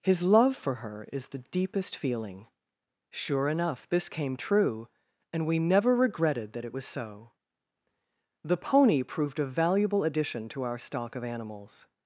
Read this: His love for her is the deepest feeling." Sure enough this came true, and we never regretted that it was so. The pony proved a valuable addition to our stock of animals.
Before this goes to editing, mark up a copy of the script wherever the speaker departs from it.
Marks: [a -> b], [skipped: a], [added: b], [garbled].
His love for her is the deepest feeling." Sure enough this came true, and we never regretted that it was so. The pony proved a valuable addition to our stock of animals.